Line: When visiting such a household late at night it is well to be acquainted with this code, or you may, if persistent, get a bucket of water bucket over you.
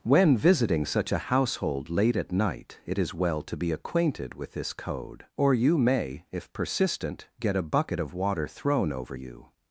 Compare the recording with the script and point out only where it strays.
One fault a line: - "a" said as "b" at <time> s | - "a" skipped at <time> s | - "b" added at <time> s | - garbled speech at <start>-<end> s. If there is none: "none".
- "bucket" said as "thrown" at 8.5 s